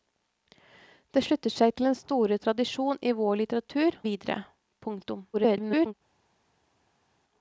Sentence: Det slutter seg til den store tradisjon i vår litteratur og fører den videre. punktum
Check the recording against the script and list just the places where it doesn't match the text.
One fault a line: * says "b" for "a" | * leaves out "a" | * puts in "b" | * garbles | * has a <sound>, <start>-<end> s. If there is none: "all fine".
* leaves out "og fører den"
* garbles